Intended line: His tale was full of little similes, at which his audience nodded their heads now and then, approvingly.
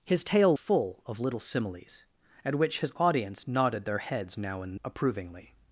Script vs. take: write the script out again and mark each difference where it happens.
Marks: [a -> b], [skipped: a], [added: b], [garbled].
His tale [skipped: was] full of little similes, at which his audience nodded their heads now and [skipped: then,] approvingly.